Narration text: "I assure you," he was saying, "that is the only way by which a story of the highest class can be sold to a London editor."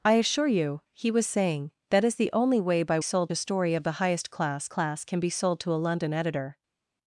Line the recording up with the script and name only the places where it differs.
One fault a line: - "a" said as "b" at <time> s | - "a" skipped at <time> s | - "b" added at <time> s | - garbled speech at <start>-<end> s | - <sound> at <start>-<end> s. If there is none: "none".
- "which" said as "sold" at 3.0 s
- "class" added at 4.7 s